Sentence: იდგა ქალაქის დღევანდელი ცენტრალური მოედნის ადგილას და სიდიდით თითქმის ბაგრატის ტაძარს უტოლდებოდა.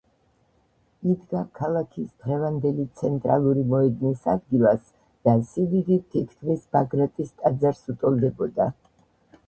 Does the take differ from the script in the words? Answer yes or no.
no